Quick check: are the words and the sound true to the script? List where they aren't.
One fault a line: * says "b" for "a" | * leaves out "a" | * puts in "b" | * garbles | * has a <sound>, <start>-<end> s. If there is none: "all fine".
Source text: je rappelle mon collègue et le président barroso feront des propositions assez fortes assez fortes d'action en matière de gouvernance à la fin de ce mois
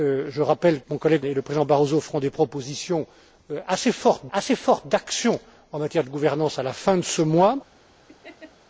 * has a laugh, 8.1-8.5 s